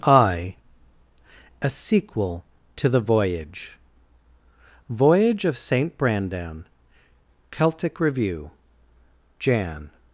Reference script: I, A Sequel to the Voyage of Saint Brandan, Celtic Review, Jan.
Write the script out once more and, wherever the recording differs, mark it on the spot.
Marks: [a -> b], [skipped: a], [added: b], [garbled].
I, A Sequel to the Voyage [added: Voyage] of Saint Brandan, Celtic Review, Jan.